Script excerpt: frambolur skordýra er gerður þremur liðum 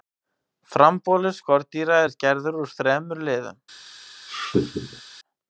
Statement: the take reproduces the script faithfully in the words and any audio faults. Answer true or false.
false